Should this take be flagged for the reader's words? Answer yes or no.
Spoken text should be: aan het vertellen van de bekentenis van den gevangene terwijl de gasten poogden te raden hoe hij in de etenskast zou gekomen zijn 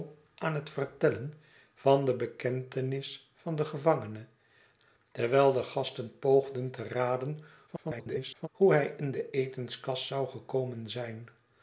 yes